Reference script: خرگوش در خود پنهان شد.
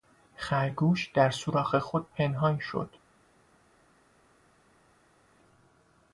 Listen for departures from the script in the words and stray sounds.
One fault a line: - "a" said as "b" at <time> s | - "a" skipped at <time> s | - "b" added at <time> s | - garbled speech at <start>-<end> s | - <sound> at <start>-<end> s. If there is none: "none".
- "سوراخ" added at 1.3 s